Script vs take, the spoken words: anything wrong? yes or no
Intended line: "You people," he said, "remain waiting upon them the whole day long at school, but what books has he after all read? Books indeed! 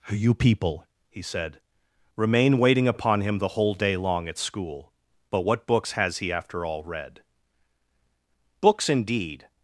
yes